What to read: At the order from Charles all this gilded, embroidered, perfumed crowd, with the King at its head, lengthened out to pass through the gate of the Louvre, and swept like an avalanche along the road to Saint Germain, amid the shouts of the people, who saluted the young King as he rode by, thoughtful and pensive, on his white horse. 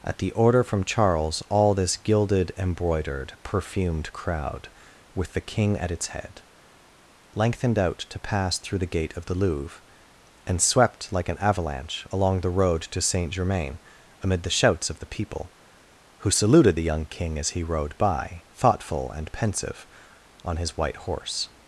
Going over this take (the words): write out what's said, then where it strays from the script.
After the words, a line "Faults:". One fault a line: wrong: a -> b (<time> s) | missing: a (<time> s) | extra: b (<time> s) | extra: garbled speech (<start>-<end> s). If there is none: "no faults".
At the order from Charles all this gilded, embroidered, perfumed crowd, with the King at its head, lengthened out to pass through the gate of the Louvre, and swept like an avalanche along the road to Saint Germain, amid the shouts of the people, who saluted the young King as he rode by, thoughtful and pensive, on his white horse.
Faults:
no faults